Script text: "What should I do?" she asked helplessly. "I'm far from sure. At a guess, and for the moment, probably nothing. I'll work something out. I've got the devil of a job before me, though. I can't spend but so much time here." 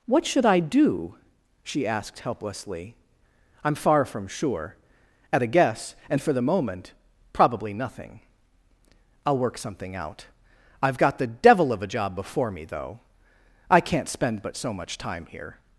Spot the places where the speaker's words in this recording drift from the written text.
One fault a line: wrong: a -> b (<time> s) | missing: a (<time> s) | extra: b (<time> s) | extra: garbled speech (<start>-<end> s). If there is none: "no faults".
no faults